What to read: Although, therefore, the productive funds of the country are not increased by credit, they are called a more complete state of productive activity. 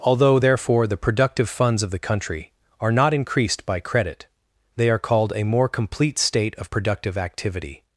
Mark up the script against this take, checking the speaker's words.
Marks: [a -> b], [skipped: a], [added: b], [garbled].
Although, therefore, the productive funds of the country are not increased by credit, they are called a more complete state of productive activity.